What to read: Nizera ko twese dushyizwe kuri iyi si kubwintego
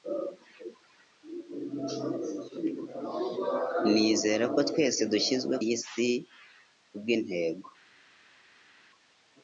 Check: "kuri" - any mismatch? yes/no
yes